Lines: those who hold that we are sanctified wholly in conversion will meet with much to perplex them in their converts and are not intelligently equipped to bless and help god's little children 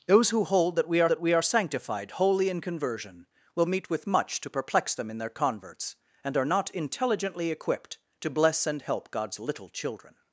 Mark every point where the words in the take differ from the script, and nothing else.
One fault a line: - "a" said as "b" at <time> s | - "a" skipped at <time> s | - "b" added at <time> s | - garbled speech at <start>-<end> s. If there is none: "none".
- "that we are" added at 1.1 s